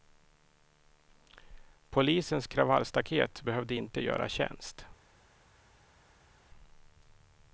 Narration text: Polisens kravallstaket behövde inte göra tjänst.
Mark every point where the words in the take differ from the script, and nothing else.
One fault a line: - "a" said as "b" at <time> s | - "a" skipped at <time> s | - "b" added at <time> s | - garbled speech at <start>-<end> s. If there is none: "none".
none